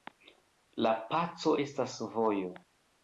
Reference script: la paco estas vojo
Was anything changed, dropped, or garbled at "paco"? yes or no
no